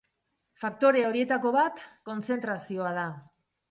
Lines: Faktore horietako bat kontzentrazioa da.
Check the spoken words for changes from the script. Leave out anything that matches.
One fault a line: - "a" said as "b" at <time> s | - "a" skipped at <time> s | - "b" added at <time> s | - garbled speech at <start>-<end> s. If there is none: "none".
none